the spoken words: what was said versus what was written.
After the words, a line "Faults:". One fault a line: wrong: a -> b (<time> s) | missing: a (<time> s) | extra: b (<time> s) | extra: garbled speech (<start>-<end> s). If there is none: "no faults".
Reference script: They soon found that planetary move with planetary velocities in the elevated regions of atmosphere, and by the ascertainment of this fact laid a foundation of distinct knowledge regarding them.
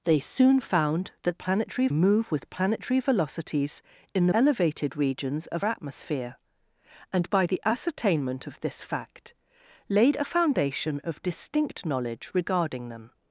They soon found that planetary move with planetary velocities in the elevated regions of atmosphere, and by the ascertainment of this fact laid a foundation of distinct knowledge regarding them.
Faults:
no faults